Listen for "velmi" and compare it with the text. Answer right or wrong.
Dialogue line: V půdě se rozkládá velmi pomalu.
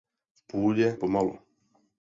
wrong